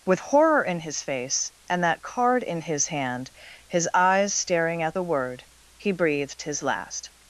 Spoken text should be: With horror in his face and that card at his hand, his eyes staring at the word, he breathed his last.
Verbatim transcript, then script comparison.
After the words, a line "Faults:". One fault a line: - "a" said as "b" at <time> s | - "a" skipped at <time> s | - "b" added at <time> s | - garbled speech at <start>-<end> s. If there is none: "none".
With horror in his face and that card in his hand, his eyes staring at the word, he breathed his last.
Faults:
- "at" said as "in" at 2.4 s